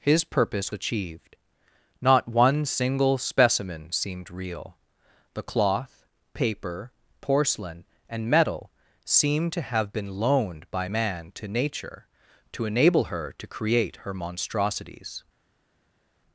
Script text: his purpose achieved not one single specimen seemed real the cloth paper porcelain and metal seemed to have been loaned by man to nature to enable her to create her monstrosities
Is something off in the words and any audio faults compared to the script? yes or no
no